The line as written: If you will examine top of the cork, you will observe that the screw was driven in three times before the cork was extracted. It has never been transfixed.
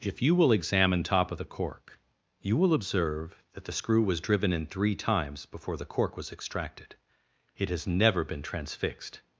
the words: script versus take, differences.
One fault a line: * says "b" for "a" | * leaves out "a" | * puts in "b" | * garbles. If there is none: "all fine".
all fine